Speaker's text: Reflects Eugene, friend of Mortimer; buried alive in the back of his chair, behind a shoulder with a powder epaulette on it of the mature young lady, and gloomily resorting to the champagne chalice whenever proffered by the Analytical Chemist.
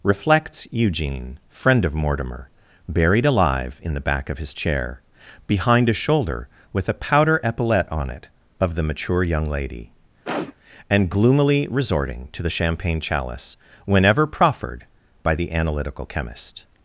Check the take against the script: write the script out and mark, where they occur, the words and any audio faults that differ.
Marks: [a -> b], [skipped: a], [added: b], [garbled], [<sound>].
Reflects Eugene, friend of Mortimer; buried alive in the back of his chair, behind a shoulder with a powder epaulette on it of the mature young lady, [sniff] and gloomily resorting to the champagne chalice whenever proffered by the Analytical Chemist.